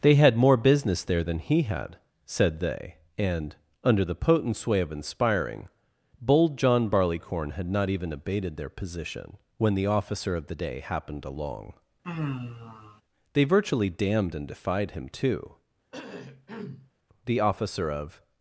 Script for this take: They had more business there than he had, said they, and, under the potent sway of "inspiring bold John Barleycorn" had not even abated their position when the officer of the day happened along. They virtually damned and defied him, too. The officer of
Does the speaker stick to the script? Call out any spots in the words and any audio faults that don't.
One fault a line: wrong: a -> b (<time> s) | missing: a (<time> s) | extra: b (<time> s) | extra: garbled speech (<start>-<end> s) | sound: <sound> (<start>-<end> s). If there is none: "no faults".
sound: sigh (12.0-13.0 s)
sound: cough (15.9-16.9 s)